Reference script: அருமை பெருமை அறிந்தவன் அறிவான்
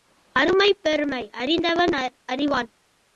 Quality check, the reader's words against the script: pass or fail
pass